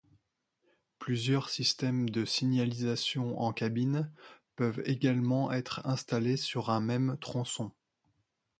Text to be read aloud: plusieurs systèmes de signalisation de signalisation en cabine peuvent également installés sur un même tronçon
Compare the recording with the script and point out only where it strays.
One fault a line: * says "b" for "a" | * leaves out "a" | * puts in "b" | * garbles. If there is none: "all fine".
* leaves out "de signalisation"
* puts in "être"